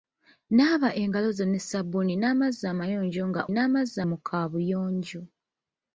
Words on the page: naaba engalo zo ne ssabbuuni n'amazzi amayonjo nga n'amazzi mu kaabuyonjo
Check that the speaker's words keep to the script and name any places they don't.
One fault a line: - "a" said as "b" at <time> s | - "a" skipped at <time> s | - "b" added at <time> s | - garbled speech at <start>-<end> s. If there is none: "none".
none